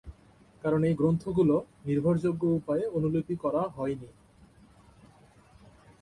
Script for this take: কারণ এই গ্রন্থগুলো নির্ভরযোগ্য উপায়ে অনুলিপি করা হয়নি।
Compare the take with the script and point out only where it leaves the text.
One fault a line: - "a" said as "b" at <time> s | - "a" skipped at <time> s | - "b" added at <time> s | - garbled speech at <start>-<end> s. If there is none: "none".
none